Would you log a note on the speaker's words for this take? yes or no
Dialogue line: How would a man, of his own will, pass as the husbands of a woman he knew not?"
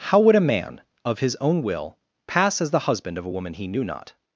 yes